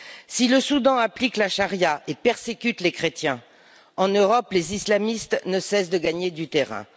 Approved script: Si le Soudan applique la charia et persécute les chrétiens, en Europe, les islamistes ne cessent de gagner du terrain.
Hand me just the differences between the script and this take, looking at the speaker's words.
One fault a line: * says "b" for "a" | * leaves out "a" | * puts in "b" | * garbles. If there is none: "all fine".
all fine